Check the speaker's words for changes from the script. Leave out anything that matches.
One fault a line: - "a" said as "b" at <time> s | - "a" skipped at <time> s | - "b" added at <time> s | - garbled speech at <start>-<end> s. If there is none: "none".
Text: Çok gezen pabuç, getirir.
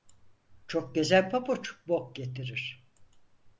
- "bok" added at 1.9 s